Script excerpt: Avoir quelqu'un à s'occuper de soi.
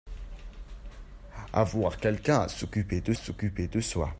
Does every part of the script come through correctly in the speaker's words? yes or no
no